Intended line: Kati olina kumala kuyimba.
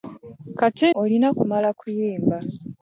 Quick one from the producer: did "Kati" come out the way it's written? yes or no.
yes